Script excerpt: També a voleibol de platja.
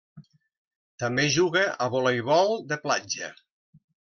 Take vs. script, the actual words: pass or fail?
fail